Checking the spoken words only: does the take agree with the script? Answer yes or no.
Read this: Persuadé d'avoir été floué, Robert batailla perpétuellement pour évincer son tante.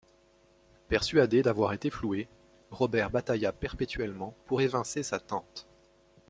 no